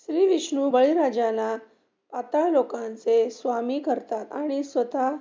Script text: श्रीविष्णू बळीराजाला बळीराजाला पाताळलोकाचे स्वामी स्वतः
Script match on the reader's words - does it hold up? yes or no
no